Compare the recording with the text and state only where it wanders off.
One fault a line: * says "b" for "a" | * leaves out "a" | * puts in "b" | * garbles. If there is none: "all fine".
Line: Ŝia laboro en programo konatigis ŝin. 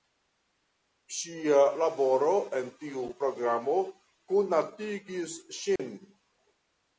* puts in "tiu"